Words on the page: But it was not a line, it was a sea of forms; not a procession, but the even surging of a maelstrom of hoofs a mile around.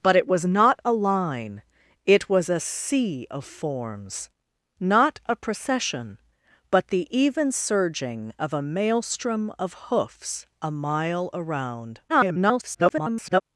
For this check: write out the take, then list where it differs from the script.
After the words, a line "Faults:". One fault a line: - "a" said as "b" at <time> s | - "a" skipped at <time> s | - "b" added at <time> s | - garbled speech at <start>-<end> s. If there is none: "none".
But it was not a line, it was a sea of forms; not a procession, but the even surging of a maelstrom of hoofs a mile around. [garbled]
Faults:
- garbled speech at 12.1-13.4 s